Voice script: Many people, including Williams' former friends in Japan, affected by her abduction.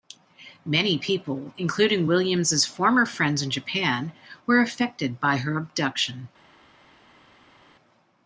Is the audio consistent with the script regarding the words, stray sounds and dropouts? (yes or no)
no